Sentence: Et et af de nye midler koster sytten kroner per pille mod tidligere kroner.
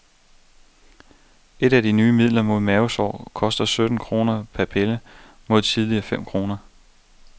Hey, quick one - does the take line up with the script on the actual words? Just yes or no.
no